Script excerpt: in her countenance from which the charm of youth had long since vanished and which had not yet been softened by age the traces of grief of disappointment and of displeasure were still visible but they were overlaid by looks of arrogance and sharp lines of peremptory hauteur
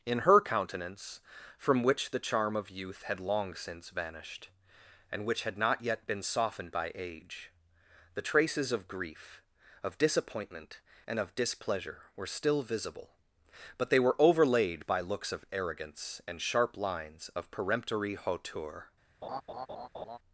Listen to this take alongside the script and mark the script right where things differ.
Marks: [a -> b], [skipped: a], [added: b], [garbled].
in her countenance from which the charm of youth had long since vanished and which had not yet been softened by age the traces of grief of disappointment and of displeasure were still visible but they were overlaid by looks of arrogance and sharp lines of peremptory hauteur